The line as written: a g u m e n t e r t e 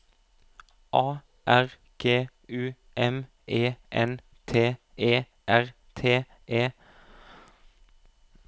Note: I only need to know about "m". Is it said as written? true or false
true